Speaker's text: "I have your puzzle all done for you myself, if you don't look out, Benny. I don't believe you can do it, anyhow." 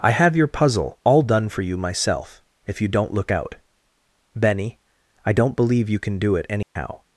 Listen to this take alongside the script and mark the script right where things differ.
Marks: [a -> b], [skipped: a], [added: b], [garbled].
"I have your puzzle all done for you myself, if you don't look out, Benny. I don't believe you can do it, anyhow."